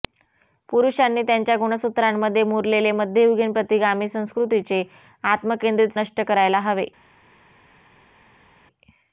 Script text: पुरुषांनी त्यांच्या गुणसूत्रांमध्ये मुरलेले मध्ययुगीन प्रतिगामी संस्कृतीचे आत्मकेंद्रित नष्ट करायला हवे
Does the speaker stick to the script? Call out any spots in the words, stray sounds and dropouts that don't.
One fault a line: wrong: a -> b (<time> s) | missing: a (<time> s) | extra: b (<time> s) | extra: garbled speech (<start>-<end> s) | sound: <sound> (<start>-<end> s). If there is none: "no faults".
no faults